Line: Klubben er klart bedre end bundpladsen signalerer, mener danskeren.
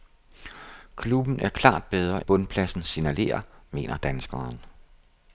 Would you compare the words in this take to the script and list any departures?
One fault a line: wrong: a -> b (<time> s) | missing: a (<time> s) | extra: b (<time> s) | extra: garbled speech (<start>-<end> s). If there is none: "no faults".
missing: end (2.3 s)